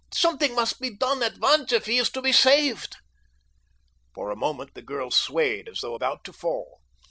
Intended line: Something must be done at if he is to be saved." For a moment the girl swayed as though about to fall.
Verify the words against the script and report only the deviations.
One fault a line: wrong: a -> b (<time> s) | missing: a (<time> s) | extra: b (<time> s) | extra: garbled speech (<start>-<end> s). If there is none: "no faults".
extra: once (1.4 s)